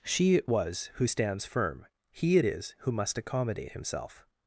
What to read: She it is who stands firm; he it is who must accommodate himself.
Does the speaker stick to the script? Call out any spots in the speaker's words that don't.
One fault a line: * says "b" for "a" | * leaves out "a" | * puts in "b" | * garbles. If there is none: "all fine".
* says "was" for "is"